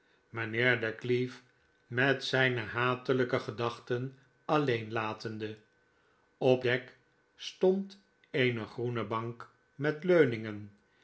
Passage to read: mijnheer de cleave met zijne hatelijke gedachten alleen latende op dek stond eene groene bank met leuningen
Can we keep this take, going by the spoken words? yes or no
yes